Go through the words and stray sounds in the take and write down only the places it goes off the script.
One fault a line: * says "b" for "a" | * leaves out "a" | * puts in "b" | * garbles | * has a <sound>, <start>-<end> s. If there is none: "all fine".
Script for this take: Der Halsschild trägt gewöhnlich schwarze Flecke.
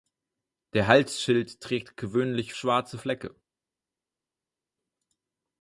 all fine